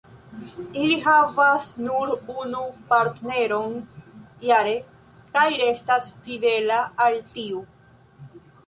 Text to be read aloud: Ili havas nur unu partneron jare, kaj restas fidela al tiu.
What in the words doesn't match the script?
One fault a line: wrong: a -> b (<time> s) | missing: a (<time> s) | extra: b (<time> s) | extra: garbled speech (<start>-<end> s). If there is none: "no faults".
no faults